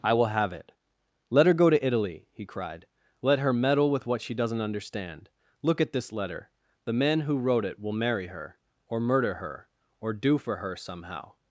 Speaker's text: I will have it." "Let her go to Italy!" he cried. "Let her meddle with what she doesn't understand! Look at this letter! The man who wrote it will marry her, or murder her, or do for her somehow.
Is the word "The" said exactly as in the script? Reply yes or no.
yes